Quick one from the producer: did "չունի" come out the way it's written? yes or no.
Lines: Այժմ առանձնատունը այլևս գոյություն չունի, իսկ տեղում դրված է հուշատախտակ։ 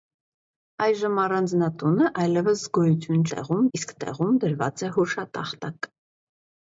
no